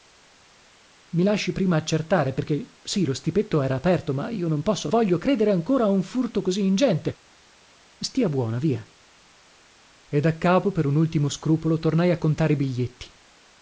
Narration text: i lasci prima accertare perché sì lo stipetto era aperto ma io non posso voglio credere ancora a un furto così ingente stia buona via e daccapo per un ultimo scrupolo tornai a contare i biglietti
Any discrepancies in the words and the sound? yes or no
no